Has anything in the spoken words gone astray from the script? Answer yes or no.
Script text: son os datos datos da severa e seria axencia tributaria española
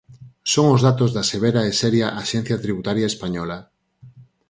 yes